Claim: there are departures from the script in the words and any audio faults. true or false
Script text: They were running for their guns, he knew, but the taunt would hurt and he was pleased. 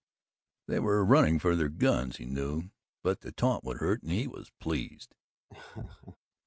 true